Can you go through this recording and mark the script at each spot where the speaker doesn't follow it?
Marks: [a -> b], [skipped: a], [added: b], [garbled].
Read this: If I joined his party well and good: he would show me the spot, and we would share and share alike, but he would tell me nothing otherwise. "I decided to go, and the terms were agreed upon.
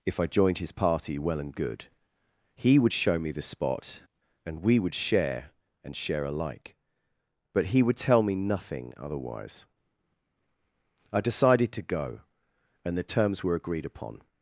If I joined his party well and good: he would show me the spot, and we would share and share alike, but he would tell me nothing otherwise. "I decided to go, and the terms were agreed upon.